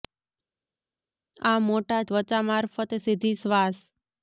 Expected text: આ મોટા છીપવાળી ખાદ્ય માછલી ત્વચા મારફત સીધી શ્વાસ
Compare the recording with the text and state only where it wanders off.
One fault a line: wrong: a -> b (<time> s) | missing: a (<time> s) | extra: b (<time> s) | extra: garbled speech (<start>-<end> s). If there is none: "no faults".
missing: છીપવાળી ખાદ્ય માછલી (2.0 s)